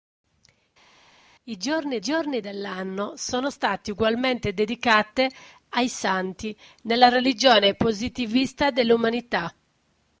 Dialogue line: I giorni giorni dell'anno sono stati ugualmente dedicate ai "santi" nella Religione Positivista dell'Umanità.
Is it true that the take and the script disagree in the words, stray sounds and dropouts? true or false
false